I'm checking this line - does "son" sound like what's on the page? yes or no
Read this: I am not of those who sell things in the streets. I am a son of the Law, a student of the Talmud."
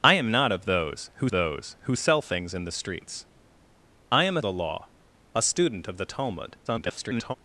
no